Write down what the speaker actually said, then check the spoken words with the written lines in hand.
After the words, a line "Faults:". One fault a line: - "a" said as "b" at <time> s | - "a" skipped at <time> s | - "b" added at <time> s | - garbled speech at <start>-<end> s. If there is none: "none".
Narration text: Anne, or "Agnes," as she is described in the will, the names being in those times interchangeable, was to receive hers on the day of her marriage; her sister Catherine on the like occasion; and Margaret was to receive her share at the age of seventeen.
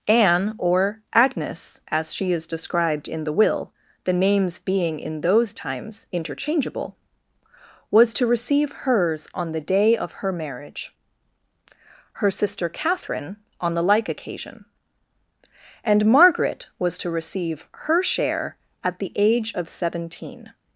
Anne, or "Agnes," as she is described in the will, the names being in those times interchangeable, was to receive hers on the day of her marriage; her sister Catherine on the like occasion; and Margaret was to receive her share at the age of seventeen.
Faults:
none